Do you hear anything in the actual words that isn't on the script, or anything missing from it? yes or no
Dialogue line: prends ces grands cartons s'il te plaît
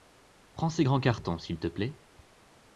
no